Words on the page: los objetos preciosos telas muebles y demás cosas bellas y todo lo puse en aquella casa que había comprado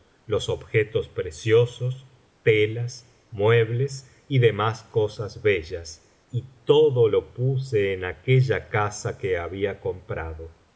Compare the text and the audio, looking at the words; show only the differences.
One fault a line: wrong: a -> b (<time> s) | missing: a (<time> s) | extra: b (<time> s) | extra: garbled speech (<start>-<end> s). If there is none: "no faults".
no faults